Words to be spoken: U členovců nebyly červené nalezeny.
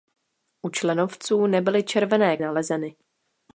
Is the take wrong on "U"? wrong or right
right